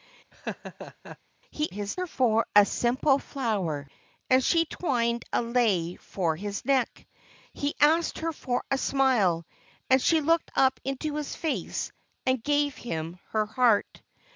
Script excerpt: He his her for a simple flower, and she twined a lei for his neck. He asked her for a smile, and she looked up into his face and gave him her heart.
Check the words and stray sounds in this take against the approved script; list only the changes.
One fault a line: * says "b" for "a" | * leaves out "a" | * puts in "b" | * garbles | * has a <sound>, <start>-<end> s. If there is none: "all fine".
* has a laugh, 0.3-1.2 s